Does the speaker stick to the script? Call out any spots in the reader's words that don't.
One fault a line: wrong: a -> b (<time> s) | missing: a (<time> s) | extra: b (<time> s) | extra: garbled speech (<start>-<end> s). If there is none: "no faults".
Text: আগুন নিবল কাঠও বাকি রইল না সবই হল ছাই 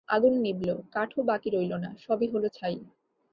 no faults